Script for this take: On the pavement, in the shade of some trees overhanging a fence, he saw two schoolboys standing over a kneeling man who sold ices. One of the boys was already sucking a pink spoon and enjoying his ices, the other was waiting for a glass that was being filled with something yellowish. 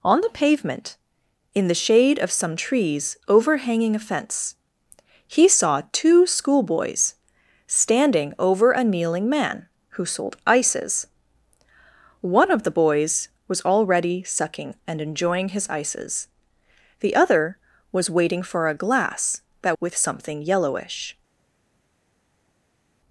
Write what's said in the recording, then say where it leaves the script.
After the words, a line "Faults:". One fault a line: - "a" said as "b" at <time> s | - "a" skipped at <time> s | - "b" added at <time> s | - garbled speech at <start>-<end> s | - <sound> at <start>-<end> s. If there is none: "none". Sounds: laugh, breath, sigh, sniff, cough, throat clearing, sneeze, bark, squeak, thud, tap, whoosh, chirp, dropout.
On the pavement, in the shade of some trees overhanging a fence, he saw two schoolboys standing over a kneeling man who sold ices. One of the boys was already sucking and enjoying his ices, the other was waiting for a glass that with something yellowish.
Faults:
- "a pink spoon" skipped at 14.7 s
- "was being filled" skipped at 19.8 s